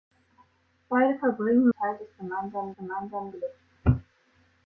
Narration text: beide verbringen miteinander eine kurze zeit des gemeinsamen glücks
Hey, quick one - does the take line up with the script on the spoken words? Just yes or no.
no